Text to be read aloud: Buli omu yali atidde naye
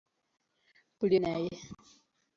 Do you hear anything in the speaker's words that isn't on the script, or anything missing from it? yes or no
yes